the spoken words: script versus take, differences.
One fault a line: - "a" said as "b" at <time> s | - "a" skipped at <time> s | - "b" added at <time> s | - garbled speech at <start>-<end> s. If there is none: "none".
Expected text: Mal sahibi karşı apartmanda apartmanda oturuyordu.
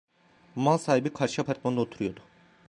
- "apartmanda" skipped at 1.8 s